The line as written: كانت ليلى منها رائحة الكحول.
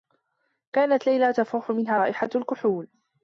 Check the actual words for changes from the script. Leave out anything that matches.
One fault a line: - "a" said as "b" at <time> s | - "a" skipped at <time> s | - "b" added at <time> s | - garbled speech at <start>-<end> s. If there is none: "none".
- "تفوح" added at 1.3 s